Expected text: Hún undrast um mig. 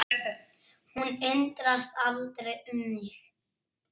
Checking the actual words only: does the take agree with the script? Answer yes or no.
no